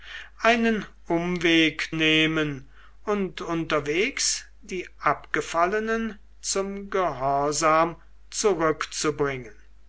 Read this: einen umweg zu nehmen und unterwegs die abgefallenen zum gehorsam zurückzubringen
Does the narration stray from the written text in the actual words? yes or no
yes